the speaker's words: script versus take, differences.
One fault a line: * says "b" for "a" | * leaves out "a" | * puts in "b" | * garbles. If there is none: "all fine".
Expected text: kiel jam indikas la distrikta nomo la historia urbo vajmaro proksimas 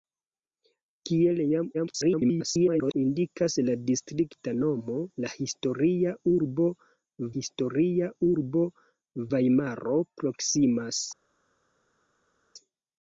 * garbles
* puts in "historia urbo"